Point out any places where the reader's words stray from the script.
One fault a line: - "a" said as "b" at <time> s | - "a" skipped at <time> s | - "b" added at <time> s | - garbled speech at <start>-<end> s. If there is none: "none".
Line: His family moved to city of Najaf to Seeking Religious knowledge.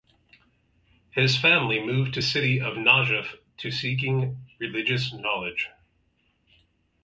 none